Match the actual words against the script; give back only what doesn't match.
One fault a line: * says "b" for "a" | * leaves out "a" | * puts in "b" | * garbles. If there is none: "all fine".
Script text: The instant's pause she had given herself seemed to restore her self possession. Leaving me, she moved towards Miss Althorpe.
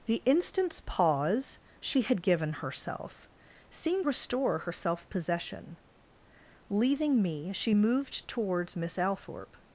* leaves out "to"